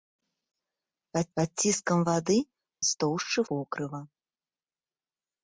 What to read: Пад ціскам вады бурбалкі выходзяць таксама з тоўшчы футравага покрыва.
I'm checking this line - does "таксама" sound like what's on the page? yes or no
no